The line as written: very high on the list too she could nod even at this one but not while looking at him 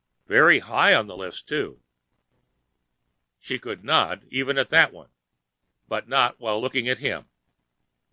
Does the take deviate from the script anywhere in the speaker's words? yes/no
yes